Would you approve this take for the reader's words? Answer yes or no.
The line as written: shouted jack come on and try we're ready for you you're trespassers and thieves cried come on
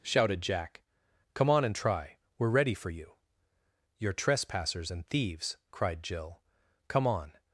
no